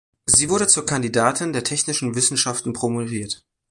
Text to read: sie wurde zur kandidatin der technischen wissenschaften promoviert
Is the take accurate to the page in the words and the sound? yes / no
yes